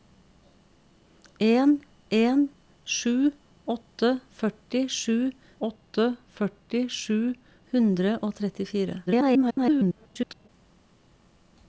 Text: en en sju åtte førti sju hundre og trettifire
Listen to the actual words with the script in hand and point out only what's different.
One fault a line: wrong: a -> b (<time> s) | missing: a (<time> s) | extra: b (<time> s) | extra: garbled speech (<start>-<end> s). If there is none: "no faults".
extra: åtte førti sju (5.7 s)
extra: garbled speech (9.1-10.5 s)